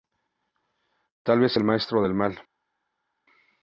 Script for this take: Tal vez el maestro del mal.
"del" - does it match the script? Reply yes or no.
yes